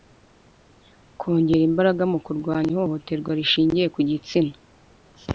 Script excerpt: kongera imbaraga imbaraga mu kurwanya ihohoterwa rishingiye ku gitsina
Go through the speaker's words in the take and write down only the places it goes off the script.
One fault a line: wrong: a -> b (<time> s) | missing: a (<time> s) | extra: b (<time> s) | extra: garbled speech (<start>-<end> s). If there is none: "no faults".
missing: imbaraga (2.0 s)